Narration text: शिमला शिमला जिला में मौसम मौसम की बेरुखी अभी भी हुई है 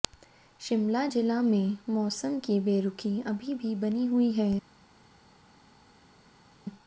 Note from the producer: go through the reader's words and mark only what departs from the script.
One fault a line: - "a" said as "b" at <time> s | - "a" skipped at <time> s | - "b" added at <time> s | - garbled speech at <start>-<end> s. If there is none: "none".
- "शिमला" skipped at 1.1 s
- "मौसम" skipped at 2.4 s
- "बनी" added at 3.8 s